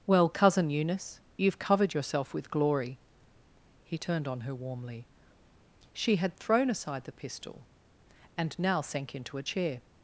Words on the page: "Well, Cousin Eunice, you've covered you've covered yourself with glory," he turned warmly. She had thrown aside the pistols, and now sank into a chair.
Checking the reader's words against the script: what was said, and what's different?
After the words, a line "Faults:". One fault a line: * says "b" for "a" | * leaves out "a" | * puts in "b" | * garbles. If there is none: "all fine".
"Well, Cousin Eunice, you've covered yourself with glory," he turned on her warmly. She had thrown aside the pistol, and now sank into a chair.
Faults:
* leaves out "you've covered"
* puts in "on her"
* says "pistol" for "pistols"